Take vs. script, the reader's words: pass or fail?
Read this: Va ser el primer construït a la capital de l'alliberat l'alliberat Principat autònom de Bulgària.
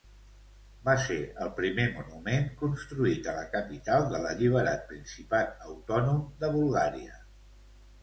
fail